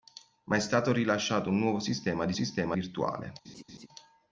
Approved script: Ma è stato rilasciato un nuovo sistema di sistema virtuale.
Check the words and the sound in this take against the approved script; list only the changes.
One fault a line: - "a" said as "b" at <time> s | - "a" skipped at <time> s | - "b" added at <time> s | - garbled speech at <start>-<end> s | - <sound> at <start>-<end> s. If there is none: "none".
- laugh at 3.4-3.9 s